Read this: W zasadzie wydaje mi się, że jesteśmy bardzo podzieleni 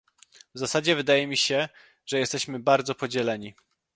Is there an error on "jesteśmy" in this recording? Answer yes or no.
no